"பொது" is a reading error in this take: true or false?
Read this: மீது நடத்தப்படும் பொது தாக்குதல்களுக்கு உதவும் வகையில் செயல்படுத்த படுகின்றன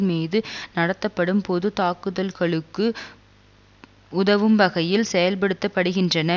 false